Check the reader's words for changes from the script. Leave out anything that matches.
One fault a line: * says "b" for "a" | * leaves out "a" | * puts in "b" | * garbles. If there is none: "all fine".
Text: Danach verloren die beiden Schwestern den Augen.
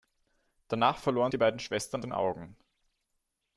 all fine